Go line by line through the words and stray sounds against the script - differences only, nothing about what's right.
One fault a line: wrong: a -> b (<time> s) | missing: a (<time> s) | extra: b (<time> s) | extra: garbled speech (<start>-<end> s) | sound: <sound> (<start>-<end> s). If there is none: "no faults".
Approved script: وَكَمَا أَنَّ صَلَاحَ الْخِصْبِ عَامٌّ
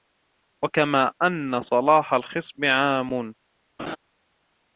sound: laugh (3.8-4.0 s)